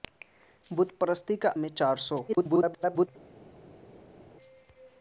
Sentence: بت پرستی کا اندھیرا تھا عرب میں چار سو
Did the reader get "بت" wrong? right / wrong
right